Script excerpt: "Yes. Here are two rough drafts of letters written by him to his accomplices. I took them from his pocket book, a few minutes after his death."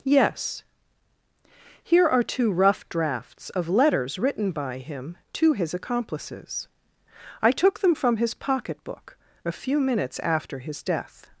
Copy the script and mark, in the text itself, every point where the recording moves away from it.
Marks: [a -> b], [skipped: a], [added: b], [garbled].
"Yes. Here are two rough drafts of letters written by him to his accomplices. I took them from his pocket book, a few minutes after his death."